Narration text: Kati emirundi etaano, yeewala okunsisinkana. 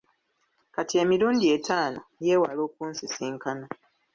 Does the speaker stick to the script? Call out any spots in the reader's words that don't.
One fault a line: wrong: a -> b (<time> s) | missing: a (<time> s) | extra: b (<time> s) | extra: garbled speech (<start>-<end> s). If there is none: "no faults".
no faults